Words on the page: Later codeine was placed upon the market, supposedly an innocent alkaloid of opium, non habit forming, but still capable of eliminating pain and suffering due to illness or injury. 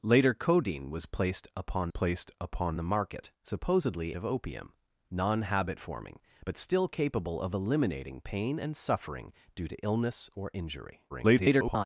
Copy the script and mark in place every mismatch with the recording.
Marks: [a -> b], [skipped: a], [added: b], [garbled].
Later codeine was placed upon [added: placed upon] the market, supposedly [skipped: an innocent alkaloid] of opium, non habit forming, but still capable of eliminating pain and suffering due to illness or injury. [garbled]